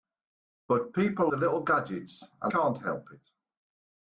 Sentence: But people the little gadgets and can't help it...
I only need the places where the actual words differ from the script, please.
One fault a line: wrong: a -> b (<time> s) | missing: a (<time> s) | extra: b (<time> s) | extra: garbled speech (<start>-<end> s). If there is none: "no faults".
no faults